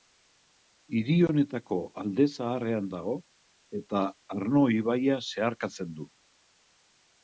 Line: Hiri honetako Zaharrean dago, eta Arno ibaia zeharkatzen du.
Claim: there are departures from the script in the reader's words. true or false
true